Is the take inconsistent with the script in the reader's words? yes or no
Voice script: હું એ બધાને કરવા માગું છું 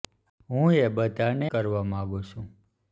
no